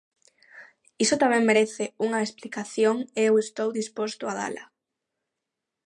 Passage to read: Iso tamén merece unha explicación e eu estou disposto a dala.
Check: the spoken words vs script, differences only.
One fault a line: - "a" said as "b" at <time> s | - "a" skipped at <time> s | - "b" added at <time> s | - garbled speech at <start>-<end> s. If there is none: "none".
none